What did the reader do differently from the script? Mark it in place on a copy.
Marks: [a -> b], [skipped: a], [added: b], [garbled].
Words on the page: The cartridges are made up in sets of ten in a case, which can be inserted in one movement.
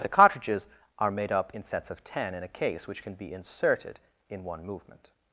The cartridges are made up in sets of ten in a case, which can be inserted in one movement.